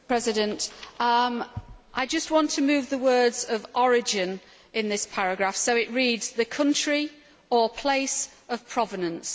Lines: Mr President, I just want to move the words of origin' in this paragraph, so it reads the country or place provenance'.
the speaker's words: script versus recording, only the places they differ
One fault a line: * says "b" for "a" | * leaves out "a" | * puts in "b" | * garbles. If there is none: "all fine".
* puts in "of"